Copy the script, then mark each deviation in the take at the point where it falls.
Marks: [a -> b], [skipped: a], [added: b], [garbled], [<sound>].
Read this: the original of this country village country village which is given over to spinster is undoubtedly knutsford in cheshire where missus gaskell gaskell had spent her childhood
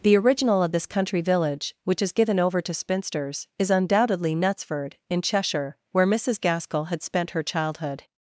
the original of this country village [skipped: country village] which is given over to [spinster -> spinsters] is undoubtedly knutsford in cheshire where missus gaskell [skipped: gaskell] had spent her childhood